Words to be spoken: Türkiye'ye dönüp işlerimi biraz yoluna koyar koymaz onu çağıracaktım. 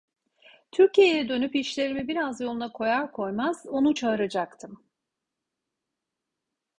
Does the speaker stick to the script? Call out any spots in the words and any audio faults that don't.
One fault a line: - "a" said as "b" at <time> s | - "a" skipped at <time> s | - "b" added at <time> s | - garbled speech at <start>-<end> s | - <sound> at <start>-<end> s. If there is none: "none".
none